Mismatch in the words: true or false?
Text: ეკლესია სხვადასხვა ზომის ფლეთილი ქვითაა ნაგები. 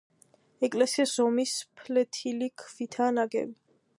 true